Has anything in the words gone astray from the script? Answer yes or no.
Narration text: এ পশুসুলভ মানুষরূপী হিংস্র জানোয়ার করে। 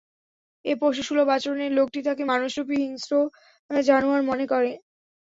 yes